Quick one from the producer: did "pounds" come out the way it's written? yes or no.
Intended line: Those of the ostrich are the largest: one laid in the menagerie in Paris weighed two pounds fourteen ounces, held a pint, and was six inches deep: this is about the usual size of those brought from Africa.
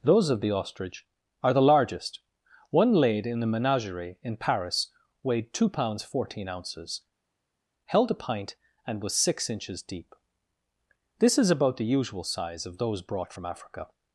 yes